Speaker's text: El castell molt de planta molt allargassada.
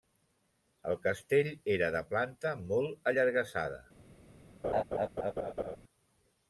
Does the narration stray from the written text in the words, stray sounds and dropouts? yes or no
yes